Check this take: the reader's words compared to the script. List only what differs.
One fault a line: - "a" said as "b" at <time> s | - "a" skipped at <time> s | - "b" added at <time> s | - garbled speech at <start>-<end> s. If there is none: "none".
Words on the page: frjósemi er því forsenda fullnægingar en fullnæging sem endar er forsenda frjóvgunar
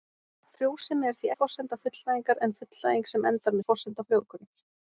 none